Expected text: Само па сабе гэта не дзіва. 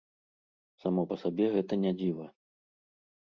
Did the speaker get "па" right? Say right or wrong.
right